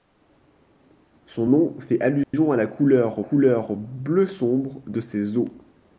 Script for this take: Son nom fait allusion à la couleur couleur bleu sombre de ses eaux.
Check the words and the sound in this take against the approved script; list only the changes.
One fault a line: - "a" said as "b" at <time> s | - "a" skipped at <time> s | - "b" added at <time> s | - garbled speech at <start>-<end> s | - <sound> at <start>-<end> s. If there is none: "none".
- dropout at 2.2-2.3 s